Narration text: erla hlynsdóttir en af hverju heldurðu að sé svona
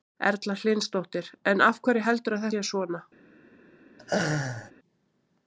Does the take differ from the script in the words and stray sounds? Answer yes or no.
yes